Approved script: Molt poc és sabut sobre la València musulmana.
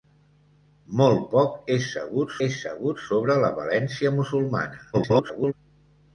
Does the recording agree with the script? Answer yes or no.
no